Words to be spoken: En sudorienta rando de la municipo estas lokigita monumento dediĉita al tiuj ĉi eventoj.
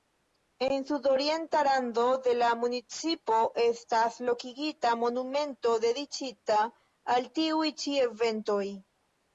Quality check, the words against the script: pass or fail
pass